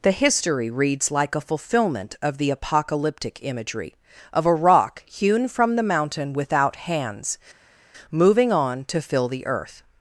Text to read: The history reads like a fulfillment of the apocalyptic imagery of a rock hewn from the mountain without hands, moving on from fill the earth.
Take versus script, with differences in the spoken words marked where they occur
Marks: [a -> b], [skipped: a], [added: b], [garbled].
The history reads like a fulfillment of the apocalyptic imagery of a rock hewn from the mountain without hands, moving on [from -> to] fill the earth.